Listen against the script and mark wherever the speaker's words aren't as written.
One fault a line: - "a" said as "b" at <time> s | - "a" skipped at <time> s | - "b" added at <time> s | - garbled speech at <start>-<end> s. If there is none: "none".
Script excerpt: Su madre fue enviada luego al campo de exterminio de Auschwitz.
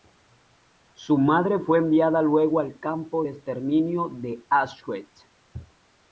none